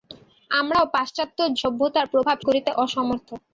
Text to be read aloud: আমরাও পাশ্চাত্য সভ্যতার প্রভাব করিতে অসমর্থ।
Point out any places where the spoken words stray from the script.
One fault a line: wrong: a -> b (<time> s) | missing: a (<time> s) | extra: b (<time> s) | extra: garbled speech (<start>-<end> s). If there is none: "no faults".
no faults